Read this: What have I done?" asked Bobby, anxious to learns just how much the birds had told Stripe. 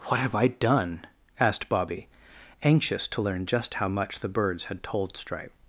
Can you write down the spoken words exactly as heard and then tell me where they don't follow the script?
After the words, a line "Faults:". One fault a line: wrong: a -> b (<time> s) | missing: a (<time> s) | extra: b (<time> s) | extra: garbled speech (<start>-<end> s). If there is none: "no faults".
What have I done?" asked Bobby, anxious to learn just how much the birds had told Stripe.
Faults:
wrong: learns -> learn (3.2 s)